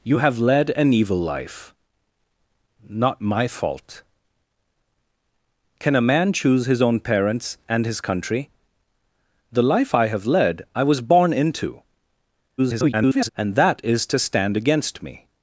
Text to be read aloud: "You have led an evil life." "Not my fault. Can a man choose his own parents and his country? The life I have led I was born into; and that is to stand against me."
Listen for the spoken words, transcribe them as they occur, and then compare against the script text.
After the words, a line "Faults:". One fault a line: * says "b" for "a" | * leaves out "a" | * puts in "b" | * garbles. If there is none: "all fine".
"You have led an evil life." "Not my fault. Can a man choose his own parents and his country? The life I have led I was born into; [garbled] and that is to stand against me."
Faults:
* garbles